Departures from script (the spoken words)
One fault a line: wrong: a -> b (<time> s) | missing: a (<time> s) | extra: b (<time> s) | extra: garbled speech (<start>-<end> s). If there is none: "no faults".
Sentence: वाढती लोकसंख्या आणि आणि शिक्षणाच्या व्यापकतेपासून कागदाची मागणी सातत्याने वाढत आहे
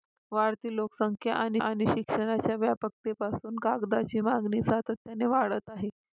no faults